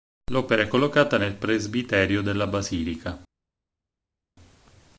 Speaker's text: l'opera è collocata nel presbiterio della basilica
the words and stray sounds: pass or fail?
pass